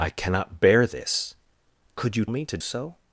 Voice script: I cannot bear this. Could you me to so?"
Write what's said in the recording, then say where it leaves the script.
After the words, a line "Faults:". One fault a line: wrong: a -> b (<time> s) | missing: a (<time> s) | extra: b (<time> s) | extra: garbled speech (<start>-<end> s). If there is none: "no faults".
I cannot bear this. Could you me to so?"
Faults:
no faults